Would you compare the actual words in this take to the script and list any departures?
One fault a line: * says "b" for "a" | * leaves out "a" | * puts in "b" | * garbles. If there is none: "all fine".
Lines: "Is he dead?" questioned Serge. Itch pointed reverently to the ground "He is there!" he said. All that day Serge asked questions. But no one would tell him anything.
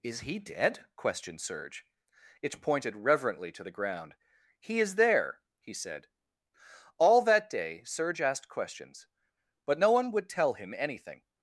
all fine